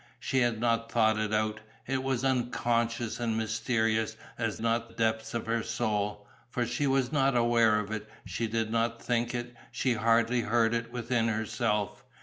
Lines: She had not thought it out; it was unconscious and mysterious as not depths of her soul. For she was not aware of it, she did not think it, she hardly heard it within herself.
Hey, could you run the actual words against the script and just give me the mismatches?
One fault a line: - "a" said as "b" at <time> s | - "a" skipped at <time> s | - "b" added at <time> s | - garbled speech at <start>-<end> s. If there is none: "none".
none